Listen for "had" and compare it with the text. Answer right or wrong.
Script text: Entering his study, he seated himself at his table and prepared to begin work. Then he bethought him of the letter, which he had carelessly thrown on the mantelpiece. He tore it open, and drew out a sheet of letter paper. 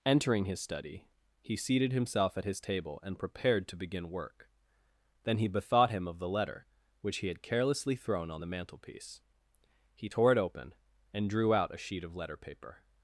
right